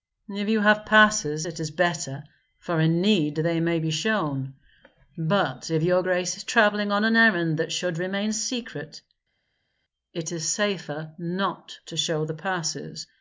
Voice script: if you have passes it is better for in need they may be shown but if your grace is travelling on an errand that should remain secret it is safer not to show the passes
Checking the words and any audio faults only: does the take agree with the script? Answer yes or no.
yes